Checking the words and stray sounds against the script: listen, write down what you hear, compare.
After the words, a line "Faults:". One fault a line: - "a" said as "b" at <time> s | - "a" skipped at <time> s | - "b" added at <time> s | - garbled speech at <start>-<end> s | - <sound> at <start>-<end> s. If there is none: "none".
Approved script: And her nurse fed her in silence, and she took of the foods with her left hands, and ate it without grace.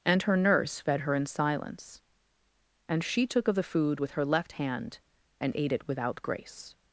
And her nurse fed her in silence, and she took of the food with her left hand, and ate it without grace.
Faults:
- "foods" said as "food" at 3.6 s
- "hands" said as "hand" at 4.5 s